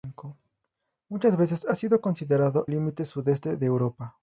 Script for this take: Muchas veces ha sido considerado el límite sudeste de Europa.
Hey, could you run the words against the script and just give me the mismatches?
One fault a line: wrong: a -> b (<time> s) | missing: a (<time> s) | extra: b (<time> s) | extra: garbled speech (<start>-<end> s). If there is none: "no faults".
missing: el (2.7 s)